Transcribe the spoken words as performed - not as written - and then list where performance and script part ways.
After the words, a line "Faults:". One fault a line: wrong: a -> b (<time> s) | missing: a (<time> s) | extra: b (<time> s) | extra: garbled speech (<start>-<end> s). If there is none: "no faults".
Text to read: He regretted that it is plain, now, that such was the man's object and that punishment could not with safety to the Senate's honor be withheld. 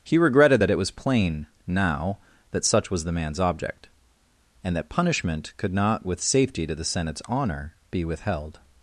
He regretted that it was plain, now, that such was the man's object and that punishment could not with safety to the Senate's honor be withheld.
Faults:
wrong: is -> was (0.8 s)